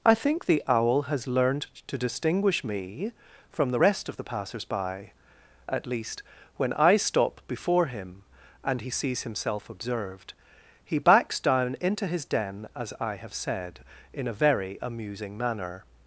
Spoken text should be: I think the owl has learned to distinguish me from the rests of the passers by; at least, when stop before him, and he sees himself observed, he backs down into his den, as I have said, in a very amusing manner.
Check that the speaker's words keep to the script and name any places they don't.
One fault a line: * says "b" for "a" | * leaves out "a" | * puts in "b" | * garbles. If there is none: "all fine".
* says "rest" for "rests"
* puts in "I"